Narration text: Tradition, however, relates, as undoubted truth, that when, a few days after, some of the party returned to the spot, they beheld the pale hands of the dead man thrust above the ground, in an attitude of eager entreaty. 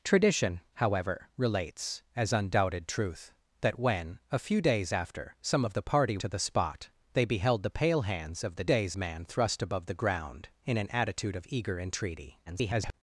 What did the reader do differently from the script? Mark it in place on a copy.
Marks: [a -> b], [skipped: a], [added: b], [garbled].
Tradition, however, relates, as undoubted truth, that when, a few days after, some of the party [skipped: returned] to the spot, they beheld the pale hands of the [dead -> days] man thrust above the ground, in an attitude of eager entreaty. [garbled]